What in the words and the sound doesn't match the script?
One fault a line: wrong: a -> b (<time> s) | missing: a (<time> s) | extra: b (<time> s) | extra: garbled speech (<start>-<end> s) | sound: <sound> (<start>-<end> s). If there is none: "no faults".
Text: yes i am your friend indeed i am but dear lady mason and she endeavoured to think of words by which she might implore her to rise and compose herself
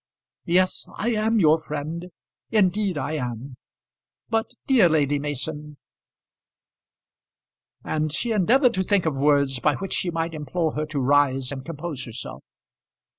no faults